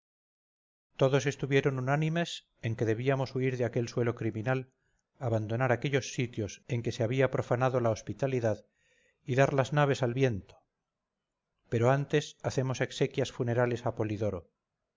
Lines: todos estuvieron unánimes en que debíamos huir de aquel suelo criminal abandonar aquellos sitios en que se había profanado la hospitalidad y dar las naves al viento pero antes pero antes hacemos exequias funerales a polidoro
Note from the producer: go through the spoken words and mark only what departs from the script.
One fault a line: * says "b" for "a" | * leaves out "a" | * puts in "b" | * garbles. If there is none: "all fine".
* leaves out "pero antes"